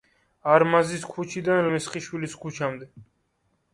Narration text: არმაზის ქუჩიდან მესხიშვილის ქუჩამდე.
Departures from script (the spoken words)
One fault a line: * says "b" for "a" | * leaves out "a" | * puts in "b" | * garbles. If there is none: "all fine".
all fine